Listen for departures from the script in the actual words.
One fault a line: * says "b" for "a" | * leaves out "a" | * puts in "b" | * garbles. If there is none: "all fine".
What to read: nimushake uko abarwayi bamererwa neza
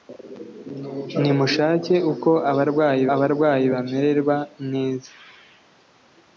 * puts in "abarwayi"